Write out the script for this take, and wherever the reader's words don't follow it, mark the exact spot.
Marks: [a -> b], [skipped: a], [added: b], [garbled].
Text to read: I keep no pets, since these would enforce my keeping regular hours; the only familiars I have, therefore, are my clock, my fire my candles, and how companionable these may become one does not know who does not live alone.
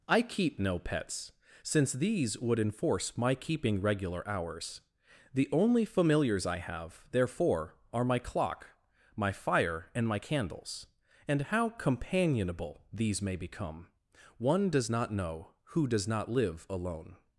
I keep no pets, since these would enforce my keeping regular hours; the only familiars I have, therefore, are my clock, my fire [added: and] my candles, and how companionable these may become one does not know who does not live alone.